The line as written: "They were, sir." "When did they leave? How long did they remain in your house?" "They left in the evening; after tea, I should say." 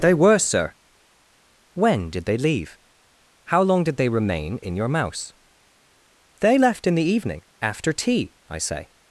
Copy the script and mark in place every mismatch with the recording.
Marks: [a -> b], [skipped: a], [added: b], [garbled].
"They were, sir." "When did they leave? How long did they remain in your [house?" -> mouse] "They left in the evening; after tea, I [skipped: should] say."